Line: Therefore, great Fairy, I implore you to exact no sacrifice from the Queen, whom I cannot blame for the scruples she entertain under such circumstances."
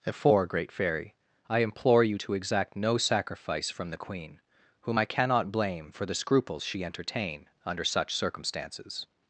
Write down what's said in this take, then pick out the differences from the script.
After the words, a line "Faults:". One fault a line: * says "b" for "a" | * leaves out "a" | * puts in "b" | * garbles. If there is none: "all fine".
Therefore, great Fairy, I implore you to exact no sacrifice from the Queen, whom I cannot blame for the scruples she entertain under such circumstances."
Faults:
all fine